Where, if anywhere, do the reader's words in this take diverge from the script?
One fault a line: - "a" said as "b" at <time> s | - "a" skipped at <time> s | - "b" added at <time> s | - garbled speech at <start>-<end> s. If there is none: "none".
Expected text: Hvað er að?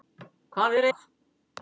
none